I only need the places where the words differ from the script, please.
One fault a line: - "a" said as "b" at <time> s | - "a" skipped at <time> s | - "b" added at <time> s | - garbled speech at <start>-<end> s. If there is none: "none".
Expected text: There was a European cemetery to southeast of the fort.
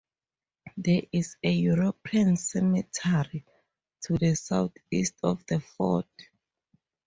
- "was" said as "is" at 1.1 s
- "the" added at 4.2 s